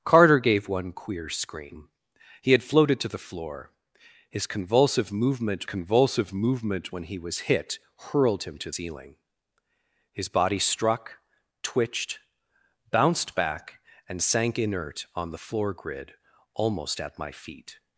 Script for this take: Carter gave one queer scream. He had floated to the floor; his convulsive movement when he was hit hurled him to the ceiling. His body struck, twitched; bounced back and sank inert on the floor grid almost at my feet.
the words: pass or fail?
fail